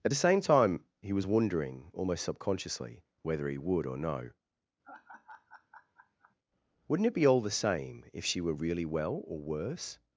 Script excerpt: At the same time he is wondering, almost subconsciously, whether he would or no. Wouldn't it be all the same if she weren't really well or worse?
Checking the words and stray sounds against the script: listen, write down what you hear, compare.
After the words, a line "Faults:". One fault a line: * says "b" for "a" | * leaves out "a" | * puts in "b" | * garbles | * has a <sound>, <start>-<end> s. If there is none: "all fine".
At the same time he was wondering, almost subconsciously, whether he would or no. Wouldn't it be all the same if she were really well or worse?
Faults:
* says "was" for "is"
* has a laugh, 4.8-6.4 s
* says "were" for "weren't"